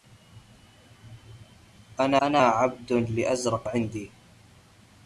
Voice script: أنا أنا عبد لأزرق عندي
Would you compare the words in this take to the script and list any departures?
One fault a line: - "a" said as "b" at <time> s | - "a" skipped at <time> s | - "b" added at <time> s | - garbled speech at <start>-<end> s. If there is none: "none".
none